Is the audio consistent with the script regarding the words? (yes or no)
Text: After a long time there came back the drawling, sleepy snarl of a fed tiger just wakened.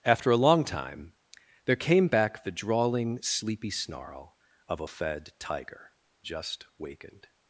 yes